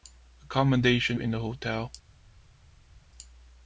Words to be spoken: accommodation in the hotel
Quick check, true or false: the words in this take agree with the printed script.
true